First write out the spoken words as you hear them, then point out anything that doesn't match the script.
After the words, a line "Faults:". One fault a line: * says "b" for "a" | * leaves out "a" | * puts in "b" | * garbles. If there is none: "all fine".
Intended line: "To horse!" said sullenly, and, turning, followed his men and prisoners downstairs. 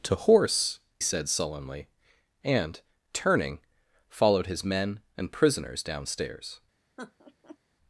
"To horse!" said sullenly, and, turning, followed his men and prisoners downstairs.
Faults:
all fine